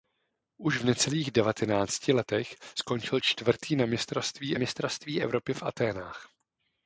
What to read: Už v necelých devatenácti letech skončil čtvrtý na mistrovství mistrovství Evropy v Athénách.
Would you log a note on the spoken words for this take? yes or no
no